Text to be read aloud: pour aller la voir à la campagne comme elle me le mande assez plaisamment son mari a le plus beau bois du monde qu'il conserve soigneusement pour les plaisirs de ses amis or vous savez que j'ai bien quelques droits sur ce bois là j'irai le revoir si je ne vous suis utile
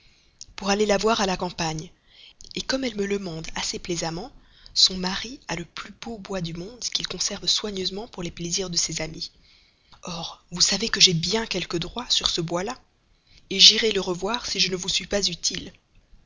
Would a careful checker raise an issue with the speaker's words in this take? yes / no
yes